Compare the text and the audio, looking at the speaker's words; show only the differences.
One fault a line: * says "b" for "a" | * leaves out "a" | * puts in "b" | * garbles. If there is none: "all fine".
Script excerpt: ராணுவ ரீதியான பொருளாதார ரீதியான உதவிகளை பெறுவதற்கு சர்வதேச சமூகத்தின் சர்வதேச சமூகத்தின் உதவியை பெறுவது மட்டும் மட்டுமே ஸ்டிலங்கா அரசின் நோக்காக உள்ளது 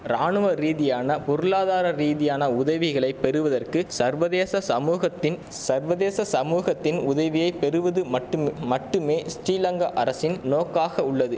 all fine